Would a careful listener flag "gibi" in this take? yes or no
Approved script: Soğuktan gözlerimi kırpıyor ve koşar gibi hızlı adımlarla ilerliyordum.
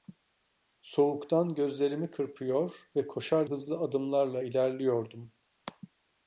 yes